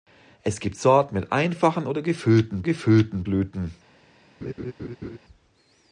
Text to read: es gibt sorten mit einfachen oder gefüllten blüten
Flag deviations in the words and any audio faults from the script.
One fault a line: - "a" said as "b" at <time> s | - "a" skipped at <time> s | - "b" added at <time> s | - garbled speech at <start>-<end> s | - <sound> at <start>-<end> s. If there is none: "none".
- "gefüllten" added at 2.6 s
- laugh at 4.4-5.2 s